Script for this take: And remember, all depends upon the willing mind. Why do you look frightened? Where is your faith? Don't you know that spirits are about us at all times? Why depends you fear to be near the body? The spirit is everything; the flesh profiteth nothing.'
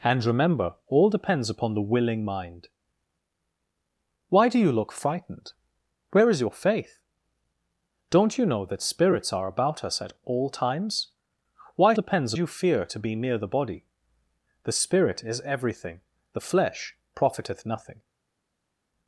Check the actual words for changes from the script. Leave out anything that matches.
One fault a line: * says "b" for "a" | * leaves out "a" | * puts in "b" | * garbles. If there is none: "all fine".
all fine